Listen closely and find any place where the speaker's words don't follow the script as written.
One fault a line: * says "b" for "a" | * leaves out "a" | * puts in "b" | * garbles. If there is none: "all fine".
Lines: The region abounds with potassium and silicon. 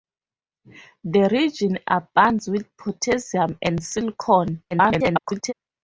* garbles